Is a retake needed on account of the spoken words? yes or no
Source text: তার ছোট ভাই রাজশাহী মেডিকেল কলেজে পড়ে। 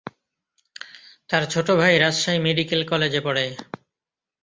no